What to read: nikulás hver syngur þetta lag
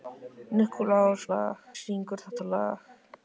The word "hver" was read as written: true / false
false